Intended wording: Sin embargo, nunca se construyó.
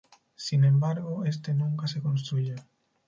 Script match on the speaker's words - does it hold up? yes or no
no